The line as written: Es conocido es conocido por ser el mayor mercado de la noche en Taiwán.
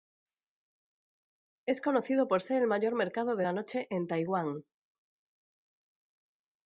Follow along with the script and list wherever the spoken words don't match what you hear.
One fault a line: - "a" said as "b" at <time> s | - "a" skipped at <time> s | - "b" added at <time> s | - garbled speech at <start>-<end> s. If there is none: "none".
- "es conocido" skipped at 2.3 s